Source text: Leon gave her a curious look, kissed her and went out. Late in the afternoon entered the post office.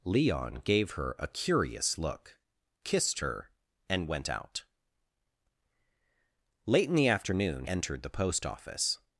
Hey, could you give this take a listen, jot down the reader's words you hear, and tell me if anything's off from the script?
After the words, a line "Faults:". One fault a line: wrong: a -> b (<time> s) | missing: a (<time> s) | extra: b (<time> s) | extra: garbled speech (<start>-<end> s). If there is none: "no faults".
Leon gave her a curious look, kissed her and went out. Late in the afternoon entered the post office.
Faults:
no faults